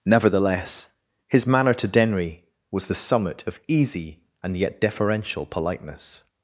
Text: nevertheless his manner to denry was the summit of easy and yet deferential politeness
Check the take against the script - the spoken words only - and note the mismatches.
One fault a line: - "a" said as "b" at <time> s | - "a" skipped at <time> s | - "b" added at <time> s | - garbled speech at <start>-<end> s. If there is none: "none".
none